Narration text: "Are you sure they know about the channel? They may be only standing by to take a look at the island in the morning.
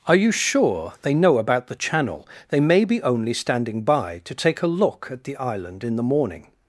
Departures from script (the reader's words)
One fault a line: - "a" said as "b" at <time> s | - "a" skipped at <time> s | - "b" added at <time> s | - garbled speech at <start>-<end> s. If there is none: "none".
none